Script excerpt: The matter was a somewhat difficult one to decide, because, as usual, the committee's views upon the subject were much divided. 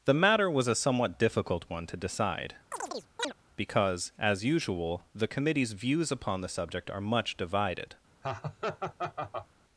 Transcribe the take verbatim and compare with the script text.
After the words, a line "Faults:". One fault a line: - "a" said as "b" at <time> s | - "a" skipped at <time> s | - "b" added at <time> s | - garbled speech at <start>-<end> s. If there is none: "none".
The matter was a somewhat difficult one to decide, because, as usual, the committee's views upon the subject are much divided.
Faults:
- "were" said as "are" at 6.9 s